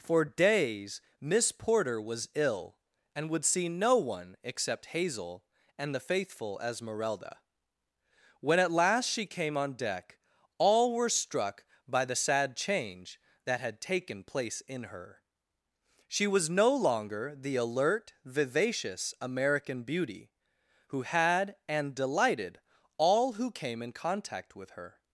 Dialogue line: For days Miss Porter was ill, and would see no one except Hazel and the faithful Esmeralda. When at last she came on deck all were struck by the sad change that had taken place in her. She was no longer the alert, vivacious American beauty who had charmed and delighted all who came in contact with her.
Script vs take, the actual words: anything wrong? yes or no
yes